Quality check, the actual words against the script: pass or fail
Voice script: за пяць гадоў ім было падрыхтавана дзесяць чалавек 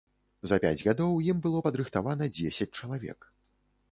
pass